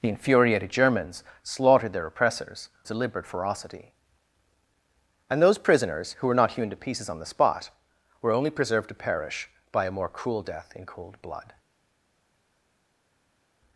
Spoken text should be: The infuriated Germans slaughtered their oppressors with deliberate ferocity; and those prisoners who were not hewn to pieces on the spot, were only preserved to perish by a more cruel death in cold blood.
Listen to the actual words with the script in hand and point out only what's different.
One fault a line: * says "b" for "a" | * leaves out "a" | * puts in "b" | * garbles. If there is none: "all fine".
* leaves out "with"